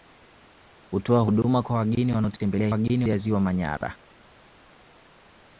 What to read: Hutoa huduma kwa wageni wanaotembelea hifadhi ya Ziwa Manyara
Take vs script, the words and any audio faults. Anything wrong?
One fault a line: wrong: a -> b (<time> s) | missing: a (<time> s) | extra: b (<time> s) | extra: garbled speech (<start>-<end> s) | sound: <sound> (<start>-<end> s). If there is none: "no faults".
wrong: hifadhi -> wageni (2.7 s)